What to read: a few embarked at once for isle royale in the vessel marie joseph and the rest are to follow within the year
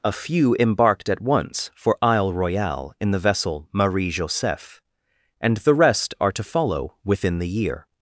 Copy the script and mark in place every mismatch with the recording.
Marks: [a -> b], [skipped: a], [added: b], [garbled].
a few embarked at once for isle royale in the vessel marie joseph and the rest are to follow within the year